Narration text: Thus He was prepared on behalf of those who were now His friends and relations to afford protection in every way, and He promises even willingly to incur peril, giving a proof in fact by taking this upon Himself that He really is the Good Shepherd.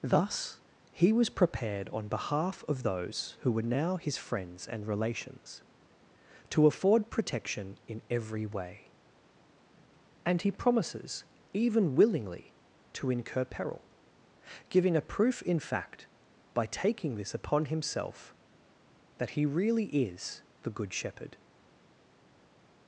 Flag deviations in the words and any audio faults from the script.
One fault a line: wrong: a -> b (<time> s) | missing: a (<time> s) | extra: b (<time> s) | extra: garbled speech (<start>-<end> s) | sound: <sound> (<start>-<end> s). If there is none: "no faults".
no faults